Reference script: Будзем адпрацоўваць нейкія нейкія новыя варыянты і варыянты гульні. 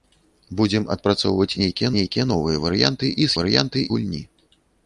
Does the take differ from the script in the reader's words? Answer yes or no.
no